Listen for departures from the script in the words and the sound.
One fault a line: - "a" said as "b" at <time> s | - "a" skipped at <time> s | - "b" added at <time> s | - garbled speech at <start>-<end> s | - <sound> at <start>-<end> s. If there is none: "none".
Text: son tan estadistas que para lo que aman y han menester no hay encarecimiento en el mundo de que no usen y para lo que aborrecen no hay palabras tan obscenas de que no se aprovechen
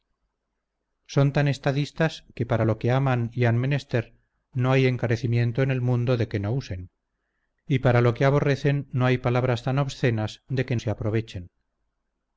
- "no" skipped at 10.8 s